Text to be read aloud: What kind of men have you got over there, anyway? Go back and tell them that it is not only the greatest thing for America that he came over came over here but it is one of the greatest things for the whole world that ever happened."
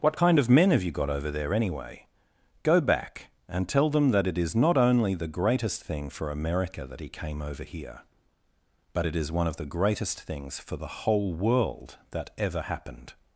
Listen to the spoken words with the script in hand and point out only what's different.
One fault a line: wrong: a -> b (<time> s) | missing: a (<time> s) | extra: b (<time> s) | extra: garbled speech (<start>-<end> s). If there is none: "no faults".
missing: came over (7.6 s)